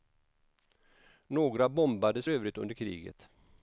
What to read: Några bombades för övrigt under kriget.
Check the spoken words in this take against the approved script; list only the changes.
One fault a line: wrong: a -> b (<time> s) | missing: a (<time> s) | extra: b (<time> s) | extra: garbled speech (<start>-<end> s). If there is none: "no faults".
missing: för (2.3 s)